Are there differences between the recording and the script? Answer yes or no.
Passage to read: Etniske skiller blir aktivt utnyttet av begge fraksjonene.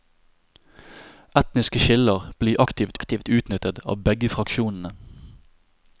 yes